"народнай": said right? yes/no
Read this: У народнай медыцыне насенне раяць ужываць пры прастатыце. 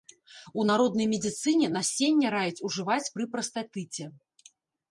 yes